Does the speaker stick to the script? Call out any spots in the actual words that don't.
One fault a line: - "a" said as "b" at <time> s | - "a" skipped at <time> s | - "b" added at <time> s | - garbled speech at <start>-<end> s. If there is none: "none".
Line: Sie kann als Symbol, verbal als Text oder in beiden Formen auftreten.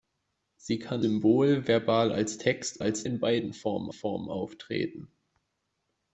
- "als" skipped at 1.1 s
- "oder" said as "als" at 2.8 s
- "Formen" added at 3.9 s